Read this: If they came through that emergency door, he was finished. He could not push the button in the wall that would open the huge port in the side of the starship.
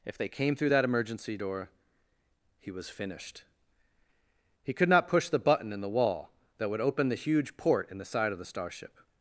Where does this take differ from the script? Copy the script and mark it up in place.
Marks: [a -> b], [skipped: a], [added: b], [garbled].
If they came through that emergency door, he was finished. He could not push the button in the wall that would open the huge port in the side of the starship.